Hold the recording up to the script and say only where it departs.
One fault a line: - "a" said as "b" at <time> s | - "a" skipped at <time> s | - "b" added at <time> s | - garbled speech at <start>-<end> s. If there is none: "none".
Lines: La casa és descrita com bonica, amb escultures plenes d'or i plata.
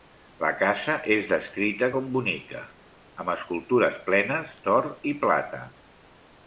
none